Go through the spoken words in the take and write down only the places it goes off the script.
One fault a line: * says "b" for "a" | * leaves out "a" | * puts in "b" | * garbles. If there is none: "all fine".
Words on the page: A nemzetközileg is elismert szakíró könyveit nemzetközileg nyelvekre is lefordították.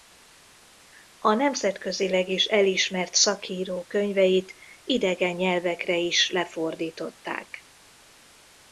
* says "idegen" for "nemzetközileg"